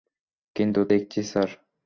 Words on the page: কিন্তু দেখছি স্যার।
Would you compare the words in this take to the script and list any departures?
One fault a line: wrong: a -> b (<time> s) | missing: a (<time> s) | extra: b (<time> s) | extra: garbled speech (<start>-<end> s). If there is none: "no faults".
no faults